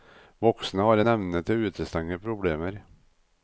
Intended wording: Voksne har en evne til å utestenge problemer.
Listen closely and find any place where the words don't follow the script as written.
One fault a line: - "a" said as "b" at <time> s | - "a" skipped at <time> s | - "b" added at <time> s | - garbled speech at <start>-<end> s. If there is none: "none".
none